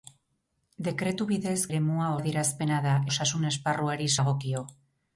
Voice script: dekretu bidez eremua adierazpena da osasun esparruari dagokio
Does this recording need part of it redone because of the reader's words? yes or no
no